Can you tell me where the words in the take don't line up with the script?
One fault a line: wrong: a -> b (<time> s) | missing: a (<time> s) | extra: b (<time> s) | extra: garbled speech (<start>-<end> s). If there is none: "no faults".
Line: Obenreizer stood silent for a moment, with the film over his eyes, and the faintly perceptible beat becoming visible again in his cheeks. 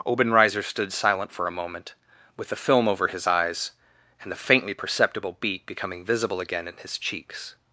no faults